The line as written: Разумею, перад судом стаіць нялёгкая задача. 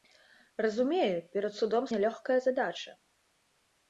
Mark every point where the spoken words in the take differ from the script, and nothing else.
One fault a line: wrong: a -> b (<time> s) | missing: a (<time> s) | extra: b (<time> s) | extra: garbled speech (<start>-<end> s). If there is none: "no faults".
missing: стаіць (1.8 s)